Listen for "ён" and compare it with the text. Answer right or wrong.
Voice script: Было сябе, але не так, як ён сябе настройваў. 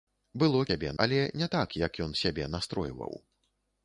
right